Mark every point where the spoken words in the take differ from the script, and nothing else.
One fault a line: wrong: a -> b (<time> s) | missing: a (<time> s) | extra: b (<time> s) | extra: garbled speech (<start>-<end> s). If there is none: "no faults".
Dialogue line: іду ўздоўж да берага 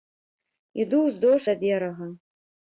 no faults